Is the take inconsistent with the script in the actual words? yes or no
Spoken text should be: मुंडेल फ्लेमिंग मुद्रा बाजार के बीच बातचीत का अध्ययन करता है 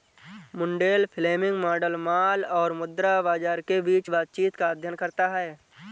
yes